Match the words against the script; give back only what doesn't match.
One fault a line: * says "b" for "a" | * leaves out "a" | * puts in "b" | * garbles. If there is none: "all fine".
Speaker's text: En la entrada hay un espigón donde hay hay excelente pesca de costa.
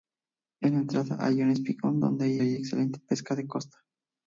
all fine